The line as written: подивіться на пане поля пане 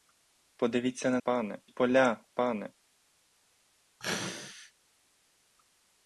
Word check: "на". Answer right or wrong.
right